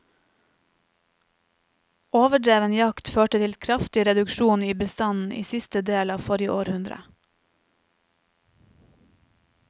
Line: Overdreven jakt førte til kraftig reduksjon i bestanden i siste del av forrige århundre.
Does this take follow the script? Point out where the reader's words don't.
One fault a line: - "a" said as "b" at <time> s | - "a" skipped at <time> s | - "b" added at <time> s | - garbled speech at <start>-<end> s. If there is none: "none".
none